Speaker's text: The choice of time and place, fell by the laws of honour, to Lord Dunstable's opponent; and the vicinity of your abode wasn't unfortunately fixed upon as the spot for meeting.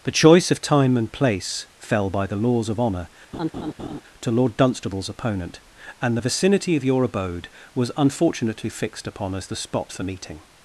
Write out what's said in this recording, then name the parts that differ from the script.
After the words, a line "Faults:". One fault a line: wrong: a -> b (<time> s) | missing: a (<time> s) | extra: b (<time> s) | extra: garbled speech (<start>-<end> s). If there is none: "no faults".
The choice of time and place, fell by the laws of honour, to Lord Dunstable's opponent; and the vicinity of your abode was unfortunately fixed upon as the spot for meeting.
Faults:
wrong: wasn't -> was (7.7 s)